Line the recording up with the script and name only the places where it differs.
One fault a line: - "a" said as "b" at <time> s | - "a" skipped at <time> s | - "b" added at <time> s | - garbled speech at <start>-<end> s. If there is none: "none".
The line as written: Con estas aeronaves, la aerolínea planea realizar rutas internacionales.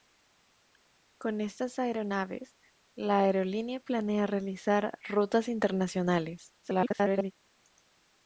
- garbled speech at 6.6-7.3 s